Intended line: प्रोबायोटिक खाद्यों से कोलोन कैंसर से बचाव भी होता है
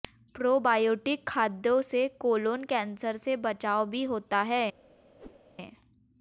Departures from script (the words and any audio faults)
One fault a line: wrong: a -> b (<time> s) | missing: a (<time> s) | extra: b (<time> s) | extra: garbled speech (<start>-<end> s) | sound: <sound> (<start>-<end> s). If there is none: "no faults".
sound: whoosh (5.2-5.4 s)